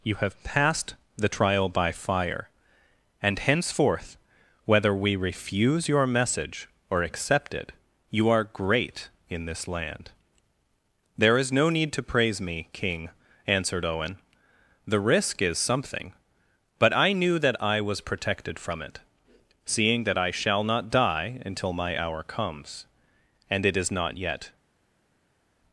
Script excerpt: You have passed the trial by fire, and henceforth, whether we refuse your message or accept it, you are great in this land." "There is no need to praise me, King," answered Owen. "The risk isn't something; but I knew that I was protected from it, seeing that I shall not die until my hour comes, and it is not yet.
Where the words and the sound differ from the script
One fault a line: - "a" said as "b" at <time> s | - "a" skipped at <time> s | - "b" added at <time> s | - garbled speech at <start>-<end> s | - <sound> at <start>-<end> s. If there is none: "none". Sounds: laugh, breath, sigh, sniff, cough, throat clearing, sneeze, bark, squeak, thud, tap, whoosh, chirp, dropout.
- "isn't" said as "is" at 15.4 s